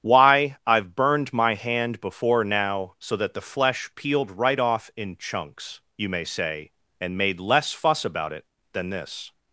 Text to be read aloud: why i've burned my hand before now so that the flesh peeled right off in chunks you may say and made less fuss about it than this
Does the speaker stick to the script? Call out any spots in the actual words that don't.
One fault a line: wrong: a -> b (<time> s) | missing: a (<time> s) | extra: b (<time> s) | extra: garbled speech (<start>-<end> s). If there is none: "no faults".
no faults